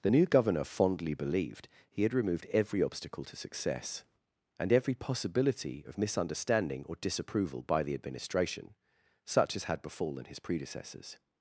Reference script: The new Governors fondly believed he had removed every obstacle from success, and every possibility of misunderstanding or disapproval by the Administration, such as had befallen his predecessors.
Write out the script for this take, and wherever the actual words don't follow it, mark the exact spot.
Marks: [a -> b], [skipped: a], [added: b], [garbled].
The new [Governors -> Governor] fondly believed he had removed every obstacle [from -> to] success, and every possibility of misunderstanding or disapproval by the Administration, such as had befallen his predecessors.